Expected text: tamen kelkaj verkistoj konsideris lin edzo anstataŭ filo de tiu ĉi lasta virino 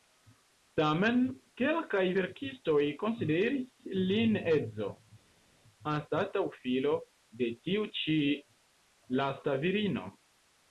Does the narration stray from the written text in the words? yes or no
no